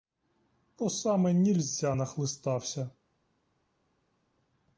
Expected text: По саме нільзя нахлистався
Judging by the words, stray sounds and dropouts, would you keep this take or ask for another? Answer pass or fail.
pass